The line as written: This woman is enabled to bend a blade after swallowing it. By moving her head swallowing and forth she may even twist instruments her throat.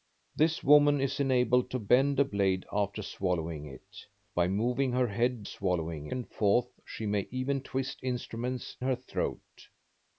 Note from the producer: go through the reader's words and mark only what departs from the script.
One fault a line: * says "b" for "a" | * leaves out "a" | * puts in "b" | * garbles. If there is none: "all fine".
all fine